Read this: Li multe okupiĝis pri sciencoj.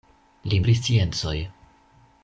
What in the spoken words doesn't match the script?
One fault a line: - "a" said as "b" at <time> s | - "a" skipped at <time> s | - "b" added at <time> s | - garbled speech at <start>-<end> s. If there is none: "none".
- "multe okupiĝis" skipped at 0.6 s